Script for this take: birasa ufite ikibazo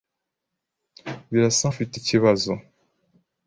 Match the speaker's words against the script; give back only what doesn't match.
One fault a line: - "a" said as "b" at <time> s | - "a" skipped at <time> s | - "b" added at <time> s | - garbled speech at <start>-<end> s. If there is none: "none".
none